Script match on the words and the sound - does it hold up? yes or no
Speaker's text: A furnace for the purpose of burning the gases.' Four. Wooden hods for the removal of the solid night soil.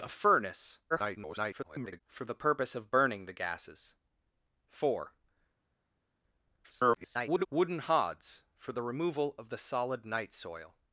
no